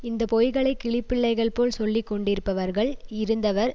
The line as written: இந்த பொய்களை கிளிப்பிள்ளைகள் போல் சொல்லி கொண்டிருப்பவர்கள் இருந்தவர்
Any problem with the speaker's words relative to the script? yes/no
no